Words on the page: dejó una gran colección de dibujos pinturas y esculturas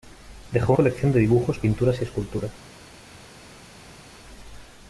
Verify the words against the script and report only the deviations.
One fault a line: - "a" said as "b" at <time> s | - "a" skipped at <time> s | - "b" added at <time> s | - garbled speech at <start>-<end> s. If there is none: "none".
- "una gran" skipped at 0.7 s